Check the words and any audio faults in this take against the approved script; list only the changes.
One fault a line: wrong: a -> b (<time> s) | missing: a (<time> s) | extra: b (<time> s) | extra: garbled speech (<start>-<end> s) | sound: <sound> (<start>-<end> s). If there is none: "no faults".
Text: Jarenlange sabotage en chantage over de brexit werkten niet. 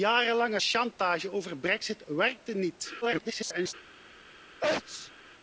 missing: sabotage en (0.6 s)
extra: garbled speech (3.0-3.7 s)
sound: sneeze (4.6-5.1 s)